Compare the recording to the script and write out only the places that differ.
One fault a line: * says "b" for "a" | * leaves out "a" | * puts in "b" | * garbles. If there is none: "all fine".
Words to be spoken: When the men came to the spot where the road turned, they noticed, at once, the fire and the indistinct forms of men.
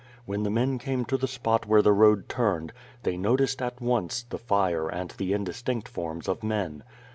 all fine